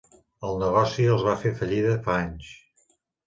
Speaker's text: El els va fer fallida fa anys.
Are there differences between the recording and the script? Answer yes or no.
yes